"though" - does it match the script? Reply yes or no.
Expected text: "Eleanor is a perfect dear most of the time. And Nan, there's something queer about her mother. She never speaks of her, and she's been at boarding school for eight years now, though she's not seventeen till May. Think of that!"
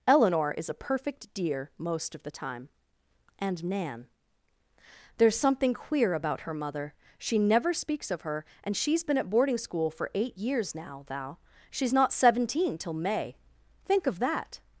no